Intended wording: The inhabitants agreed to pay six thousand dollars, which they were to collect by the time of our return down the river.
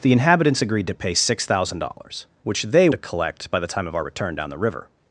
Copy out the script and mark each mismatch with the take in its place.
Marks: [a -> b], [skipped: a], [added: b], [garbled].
The inhabitants agreed to pay six thousand dollars, which they [skipped: were] to collect by the time of our return down the river.